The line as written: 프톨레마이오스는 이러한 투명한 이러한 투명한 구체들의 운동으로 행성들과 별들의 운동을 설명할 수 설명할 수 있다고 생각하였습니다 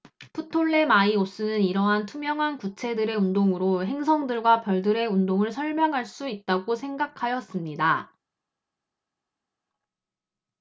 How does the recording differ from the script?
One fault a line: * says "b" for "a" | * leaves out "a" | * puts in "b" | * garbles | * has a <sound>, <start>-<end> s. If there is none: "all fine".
* leaves out "이러한 투명한"
* leaves out "설명할 수"